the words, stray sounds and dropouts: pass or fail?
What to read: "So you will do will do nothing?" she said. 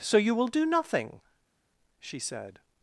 fail